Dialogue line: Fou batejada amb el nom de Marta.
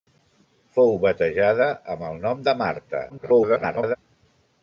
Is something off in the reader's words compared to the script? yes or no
yes